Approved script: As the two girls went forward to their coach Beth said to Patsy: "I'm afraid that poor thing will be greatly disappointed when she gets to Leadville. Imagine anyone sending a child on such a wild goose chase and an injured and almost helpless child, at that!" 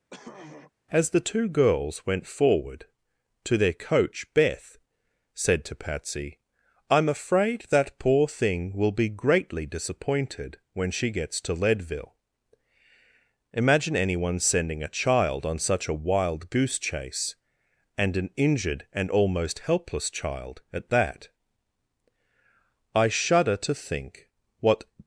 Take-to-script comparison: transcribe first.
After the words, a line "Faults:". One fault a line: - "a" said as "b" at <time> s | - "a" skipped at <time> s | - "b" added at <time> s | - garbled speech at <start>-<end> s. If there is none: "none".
As the two girls went forward to their coach Beth said to Patsy: "I'm afraid that poor thing will be greatly disappointed when she gets to Leadville. Imagine anyone sending a child on such a wild goose chase and an injured and almost helpless child, at that!" "I shudder to think what
Faults:
- "I shudder to think what" added at 23.0 s